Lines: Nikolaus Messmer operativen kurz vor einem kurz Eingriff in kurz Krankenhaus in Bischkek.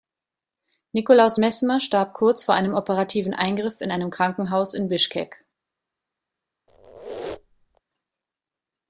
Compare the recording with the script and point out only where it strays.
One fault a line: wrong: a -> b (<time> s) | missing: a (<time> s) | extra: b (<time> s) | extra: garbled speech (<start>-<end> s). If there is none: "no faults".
wrong: operativen -> starb (1.8 s)
wrong: kurz -> operativen (2.7 s)
wrong: kurz -> einem (3.9 s)